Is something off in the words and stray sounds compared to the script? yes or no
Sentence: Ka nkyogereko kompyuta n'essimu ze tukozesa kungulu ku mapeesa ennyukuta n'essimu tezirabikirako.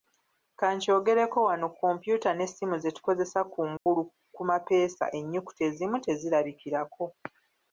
yes